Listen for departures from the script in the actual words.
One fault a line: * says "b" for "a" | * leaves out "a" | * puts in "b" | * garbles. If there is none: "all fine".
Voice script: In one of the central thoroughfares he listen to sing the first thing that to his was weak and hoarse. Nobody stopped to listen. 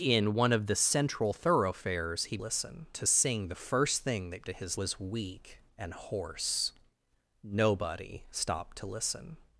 all fine